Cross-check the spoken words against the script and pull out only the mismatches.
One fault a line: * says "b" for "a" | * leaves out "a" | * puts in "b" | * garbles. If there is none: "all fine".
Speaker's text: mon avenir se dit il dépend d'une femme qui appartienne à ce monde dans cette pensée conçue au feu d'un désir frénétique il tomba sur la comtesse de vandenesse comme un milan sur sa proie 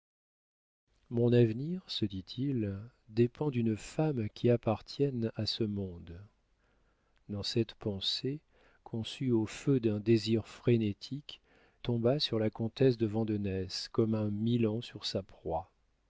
* leaves out "il"